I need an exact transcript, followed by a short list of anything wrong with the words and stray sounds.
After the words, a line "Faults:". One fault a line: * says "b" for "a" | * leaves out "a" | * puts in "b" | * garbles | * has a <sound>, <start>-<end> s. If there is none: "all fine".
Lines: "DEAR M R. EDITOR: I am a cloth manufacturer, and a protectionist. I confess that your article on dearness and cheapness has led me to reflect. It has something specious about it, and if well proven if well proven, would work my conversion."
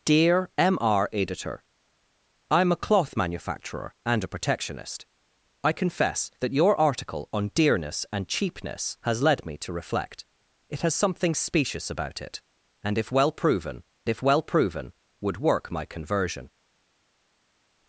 "DEAR M R. EDITOR: I am a cloth manufacturer, and a protectionist. I confess that your article on dearness and cheapness has led me to reflect. It has something specious about it, and if well proven if well proven, would work my conversion."
Faults:
all fine